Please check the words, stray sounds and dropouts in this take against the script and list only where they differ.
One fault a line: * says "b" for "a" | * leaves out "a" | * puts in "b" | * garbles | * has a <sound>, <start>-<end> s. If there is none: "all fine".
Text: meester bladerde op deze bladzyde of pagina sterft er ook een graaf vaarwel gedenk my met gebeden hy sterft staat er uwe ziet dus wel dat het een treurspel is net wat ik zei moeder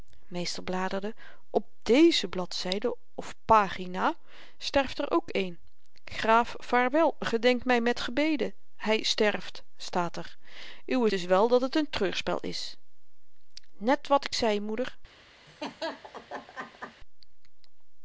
* leaves out "ziet"
* has a laugh, 15.5-17.0 s